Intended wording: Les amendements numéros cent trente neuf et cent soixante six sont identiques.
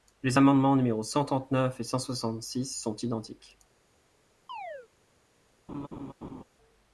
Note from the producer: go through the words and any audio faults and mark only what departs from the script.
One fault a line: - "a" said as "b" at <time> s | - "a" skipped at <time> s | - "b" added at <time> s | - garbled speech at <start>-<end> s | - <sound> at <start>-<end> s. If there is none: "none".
- chirp at 4.5-4.9 s
- laugh at 5.7-6.4 s